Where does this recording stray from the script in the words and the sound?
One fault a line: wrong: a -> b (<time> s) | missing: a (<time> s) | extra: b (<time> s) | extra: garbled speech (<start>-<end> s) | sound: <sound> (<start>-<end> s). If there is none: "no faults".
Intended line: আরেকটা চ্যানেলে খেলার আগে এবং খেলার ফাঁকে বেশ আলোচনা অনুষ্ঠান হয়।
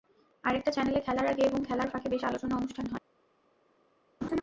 sound: laugh (4.2-4.4 s)